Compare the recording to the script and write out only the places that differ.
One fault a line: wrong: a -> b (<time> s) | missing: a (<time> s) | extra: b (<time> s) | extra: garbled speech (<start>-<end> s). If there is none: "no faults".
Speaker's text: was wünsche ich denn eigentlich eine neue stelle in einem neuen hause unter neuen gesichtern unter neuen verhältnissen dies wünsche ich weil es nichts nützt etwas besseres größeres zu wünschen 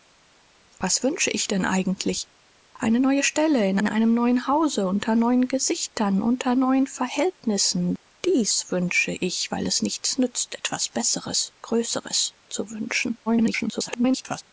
extra: in (3.8 s)
extra: garbled speech (13.3-14.4 s)